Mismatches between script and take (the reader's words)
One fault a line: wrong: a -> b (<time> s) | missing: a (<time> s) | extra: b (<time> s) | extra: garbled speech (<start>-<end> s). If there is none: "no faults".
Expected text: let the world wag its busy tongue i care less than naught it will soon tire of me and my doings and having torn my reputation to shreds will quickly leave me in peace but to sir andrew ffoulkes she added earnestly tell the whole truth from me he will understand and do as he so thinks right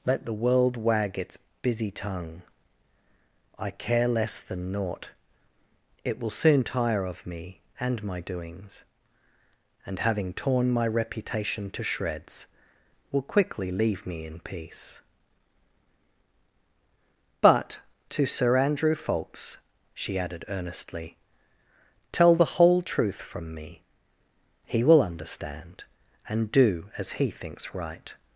missing: so (27.3 s)